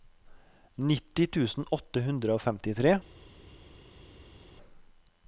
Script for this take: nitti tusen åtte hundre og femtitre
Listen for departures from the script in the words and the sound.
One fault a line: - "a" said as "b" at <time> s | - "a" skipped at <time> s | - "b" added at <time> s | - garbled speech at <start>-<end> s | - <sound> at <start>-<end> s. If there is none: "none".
none